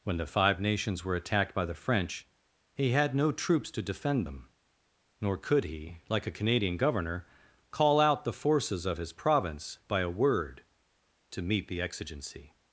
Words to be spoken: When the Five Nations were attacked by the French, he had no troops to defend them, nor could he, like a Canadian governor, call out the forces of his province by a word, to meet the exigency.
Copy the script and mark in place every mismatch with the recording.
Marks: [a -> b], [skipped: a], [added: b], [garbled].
When the Five Nations were attacked by the French, he had no troops to defend them, nor could he, like a Canadian governor, call out the forces of his province by a word, to meet the exigency.